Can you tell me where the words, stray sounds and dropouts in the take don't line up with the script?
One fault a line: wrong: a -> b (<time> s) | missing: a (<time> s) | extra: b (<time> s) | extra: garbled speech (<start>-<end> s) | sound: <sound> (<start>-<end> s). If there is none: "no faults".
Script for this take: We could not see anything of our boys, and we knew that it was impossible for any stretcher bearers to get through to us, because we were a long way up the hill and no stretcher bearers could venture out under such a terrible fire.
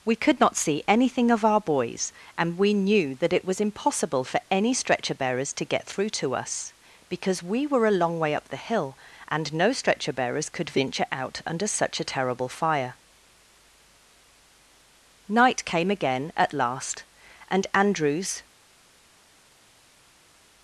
extra: Night came again at last and Andrews (15.3 s)